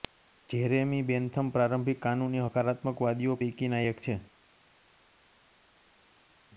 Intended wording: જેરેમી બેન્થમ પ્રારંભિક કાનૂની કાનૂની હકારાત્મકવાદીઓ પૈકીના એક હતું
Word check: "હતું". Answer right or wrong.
wrong